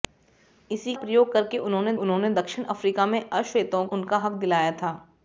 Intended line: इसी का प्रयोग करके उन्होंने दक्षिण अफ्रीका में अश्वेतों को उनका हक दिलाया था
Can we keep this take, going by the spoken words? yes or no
no